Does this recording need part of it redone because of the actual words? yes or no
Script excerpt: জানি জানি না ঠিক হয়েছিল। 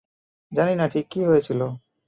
yes